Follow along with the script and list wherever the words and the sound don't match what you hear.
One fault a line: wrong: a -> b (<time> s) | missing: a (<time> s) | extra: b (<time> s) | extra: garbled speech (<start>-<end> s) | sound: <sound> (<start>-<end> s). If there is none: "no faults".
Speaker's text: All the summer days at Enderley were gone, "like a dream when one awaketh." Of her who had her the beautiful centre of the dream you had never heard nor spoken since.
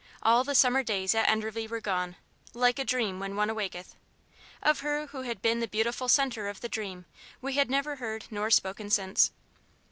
wrong: her -> been (5.4 s)
wrong: you -> we (7.4 s)